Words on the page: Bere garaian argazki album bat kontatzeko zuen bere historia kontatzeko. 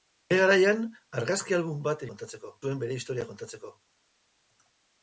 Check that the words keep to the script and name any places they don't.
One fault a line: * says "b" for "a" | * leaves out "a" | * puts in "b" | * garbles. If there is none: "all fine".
all fine